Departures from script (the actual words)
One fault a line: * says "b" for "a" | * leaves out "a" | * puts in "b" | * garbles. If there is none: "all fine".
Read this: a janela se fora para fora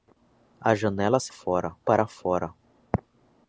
all fine